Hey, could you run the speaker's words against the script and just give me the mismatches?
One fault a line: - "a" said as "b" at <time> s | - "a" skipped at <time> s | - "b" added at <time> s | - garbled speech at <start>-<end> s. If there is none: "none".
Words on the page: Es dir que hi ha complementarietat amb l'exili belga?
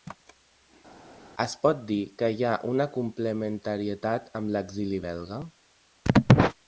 - "pot" added at 1.6 s
- "una" added at 2.7 s